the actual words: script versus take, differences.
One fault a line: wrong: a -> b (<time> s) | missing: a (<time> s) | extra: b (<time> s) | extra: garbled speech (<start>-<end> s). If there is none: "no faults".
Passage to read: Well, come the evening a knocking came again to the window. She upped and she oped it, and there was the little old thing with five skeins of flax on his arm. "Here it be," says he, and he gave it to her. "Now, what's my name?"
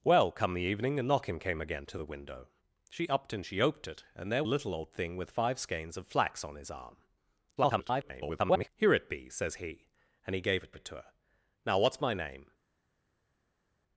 missing: was the (4.5 s)
extra: garbled speech (7.6-8.7 s)
extra: it (10.7 s)